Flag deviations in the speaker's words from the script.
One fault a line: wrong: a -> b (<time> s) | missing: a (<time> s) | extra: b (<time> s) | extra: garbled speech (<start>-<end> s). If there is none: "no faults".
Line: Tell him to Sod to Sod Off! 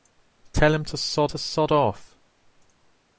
no faults